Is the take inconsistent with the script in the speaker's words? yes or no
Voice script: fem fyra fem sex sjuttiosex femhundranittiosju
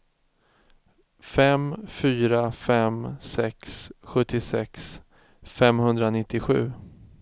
no